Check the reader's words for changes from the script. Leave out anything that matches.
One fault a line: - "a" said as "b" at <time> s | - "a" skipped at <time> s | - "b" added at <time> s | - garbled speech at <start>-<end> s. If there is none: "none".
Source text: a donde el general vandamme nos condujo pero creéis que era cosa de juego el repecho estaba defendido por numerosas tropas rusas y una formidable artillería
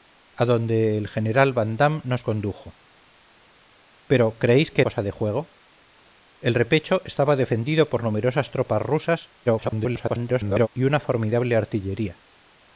- "era" skipped at 4.8 s
- garbled speech at 9.5-10.7 s